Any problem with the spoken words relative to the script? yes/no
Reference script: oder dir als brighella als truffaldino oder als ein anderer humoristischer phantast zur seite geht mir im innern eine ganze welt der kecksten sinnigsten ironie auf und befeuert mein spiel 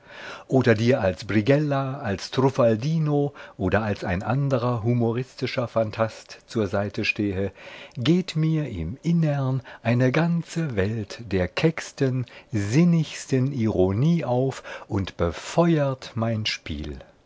yes